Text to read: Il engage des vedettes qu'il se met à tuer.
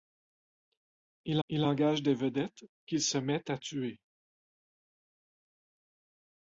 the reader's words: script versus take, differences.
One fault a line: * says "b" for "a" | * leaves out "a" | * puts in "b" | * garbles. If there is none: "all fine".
* puts in "il"